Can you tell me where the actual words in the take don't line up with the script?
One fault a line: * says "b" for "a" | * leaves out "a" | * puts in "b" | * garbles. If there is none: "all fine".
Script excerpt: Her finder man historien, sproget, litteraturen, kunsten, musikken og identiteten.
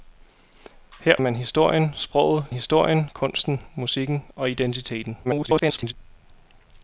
* leaves out "finder"
* says "historien" for "litteraturen"
* garbles